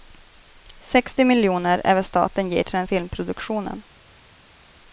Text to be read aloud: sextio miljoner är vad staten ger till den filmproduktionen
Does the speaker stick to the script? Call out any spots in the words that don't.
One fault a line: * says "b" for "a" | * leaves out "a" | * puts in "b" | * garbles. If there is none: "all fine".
all fine